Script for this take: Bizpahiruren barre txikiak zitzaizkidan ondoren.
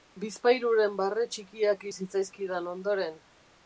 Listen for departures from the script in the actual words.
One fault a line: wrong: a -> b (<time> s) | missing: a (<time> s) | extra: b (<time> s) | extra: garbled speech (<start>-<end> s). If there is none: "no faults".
no faults